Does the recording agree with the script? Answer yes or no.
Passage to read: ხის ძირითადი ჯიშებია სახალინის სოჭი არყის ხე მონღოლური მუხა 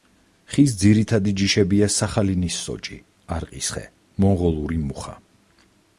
yes